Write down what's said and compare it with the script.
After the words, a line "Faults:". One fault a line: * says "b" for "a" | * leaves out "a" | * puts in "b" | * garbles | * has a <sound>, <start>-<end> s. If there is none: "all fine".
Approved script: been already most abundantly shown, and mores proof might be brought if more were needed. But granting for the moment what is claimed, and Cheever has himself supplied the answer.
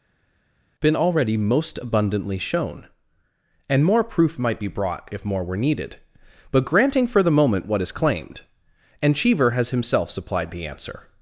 been already most abundantly shown, and more proof might be brought if more were needed. But granting for the moment what is claimed, and Cheever has himself supplied the answer.
Faults:
* says "more" for "mores"